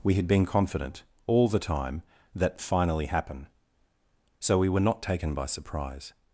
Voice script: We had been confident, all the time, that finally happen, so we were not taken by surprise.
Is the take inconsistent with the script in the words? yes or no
no